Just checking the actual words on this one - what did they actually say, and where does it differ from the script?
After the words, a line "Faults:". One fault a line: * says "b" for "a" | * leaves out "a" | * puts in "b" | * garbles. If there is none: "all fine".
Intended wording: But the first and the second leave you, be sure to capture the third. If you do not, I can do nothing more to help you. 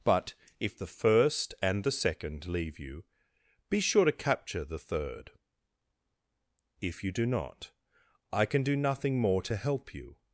But if the first and the second leave you, be sure to capture the third. If you do not, I can do nothing more to help you.
Faults:
* puts in "if"